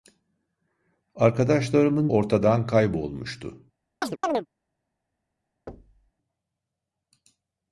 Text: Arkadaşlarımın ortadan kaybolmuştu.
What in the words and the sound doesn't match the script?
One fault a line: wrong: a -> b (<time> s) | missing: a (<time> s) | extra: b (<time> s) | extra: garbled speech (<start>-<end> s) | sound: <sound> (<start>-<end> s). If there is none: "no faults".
sound: chirp (4.0-4.5 s)
sound: thud (5.7-6.1 s)